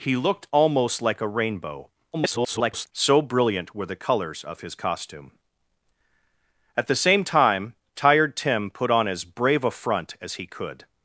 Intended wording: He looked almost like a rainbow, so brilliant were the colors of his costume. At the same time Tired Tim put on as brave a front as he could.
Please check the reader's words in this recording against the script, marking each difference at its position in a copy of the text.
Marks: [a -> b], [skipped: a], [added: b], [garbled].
He looked almost like a rainbow, [garbled] so brilliant were the colors of his costume. At the same time Tired Tim put on as brave a front as he could.